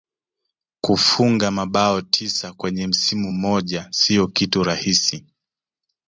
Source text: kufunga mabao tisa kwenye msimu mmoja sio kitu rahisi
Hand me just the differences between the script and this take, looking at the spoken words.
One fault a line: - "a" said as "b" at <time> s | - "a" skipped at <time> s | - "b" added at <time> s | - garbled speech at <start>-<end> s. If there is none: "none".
none